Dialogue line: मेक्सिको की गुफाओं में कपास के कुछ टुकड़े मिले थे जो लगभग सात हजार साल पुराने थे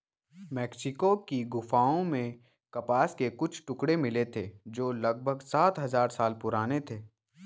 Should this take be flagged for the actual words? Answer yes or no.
no